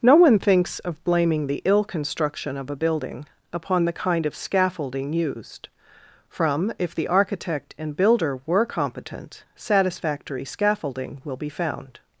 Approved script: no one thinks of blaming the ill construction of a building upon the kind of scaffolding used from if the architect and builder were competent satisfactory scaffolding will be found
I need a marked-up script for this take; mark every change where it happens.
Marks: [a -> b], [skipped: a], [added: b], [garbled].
no one thinks of blaming the ill construction of a building upon the kind of scaffolding used from if the architect and builder were competent satisfactory scaffolding will be found